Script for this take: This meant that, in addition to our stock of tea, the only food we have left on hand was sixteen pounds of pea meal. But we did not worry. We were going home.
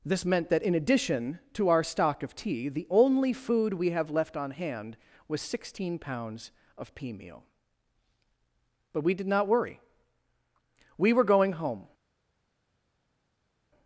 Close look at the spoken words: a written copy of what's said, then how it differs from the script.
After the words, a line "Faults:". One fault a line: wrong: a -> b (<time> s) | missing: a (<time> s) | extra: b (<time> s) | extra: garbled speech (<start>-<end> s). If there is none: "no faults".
This meant that, in addition to our stock of tea, the only food we have left on hand was sixteen pounds of pea meal. But we did not worry. We were going home.
Faults:
no faults